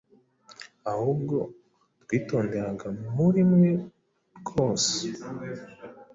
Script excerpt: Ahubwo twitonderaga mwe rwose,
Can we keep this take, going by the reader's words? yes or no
no